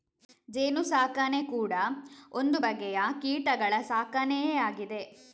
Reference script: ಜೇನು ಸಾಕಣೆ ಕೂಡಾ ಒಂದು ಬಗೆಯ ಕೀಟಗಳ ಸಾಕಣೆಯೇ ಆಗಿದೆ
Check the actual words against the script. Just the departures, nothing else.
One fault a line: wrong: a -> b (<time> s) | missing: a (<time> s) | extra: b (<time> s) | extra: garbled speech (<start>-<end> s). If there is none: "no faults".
no faults